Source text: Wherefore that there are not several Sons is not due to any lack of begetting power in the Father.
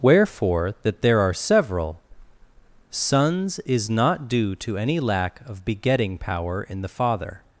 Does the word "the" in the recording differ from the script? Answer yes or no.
no